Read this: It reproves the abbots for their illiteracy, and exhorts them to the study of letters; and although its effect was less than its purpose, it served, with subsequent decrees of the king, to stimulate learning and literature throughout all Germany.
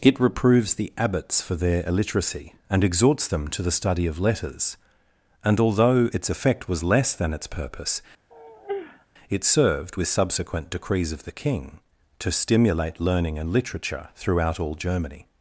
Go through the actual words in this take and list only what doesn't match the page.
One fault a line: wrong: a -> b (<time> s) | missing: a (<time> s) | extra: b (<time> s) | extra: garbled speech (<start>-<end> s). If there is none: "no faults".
no faults